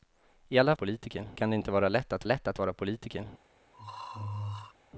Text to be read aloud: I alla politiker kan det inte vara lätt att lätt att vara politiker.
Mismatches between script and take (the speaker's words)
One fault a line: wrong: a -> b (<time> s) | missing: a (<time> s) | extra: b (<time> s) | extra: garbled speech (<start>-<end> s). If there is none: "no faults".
no faults